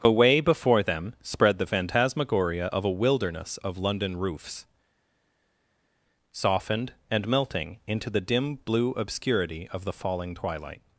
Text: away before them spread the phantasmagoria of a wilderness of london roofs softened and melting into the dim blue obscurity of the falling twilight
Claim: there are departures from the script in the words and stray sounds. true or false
false